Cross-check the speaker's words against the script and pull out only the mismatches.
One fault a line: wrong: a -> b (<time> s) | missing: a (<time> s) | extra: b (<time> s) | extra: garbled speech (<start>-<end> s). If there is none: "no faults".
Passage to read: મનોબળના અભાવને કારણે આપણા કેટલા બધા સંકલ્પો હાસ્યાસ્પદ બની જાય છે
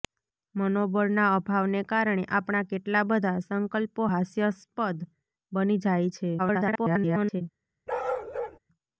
extra: garbled speech (6.4-7.4 s)